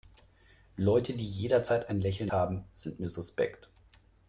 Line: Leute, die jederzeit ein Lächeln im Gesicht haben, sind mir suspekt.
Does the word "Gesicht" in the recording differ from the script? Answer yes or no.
yes